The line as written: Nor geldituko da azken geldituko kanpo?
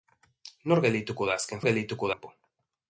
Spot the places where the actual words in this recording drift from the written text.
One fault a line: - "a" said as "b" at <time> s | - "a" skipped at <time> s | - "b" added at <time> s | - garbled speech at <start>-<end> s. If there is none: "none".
none